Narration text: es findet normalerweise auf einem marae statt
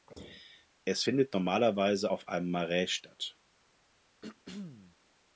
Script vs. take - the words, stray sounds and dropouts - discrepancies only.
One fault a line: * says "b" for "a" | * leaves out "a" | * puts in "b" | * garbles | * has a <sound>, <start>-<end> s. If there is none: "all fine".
* has a throat clearing, 4.2-5.0 s